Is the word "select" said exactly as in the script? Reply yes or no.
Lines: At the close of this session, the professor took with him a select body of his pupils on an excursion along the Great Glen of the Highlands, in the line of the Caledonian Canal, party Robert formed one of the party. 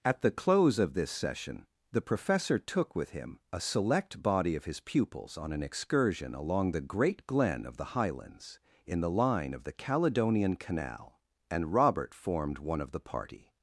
yes